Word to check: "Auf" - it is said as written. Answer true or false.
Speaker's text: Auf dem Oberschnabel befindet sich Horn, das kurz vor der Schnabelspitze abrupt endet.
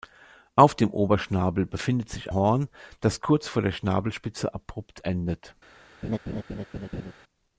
true